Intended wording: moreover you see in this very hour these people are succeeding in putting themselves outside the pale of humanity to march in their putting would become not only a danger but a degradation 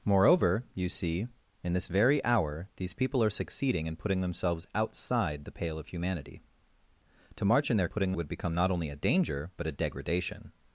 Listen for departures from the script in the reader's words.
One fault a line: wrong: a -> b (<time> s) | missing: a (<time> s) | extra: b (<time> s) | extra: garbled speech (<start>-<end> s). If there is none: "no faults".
no faults